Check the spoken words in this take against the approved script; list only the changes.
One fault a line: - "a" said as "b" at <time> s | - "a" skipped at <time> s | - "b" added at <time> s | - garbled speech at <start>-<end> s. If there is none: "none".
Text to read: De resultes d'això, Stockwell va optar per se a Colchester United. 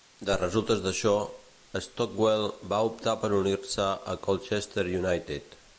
- "unir" added at 3.4 s